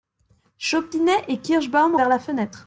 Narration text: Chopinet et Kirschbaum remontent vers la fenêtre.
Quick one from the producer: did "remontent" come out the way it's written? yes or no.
no